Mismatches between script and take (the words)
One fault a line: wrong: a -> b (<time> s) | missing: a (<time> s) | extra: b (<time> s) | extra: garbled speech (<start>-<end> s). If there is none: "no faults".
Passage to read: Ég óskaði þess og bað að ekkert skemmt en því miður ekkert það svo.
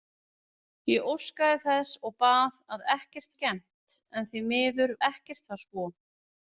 no faults